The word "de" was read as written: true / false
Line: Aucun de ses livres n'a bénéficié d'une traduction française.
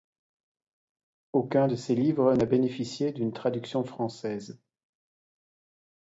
true